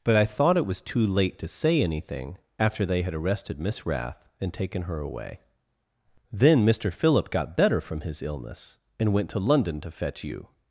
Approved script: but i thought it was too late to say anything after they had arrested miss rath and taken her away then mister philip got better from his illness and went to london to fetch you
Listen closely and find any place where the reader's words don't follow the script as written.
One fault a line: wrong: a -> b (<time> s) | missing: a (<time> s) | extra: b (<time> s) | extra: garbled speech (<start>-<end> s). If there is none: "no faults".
no faults